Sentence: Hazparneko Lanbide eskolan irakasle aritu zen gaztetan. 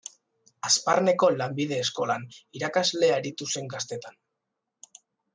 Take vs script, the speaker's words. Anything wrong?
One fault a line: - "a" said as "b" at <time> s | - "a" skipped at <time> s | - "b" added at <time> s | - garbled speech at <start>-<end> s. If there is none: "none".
none